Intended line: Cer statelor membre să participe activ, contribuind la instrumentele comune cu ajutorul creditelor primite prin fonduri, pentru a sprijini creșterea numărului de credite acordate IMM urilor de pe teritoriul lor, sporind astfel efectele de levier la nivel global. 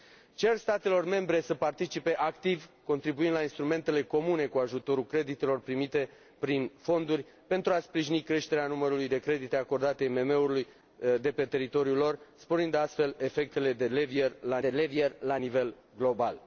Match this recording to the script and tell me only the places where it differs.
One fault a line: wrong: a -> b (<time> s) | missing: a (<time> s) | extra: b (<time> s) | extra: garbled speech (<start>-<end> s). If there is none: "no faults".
extra: de levier la (14.6 s)